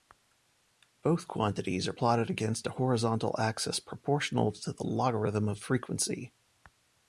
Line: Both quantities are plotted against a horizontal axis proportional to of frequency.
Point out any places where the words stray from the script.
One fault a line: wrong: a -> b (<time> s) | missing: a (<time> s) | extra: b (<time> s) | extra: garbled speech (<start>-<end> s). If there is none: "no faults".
extra: the logarithm (4.7 s)